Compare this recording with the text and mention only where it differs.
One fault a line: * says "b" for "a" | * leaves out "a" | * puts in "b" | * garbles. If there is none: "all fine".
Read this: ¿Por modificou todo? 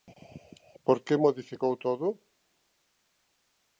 * puts in "que"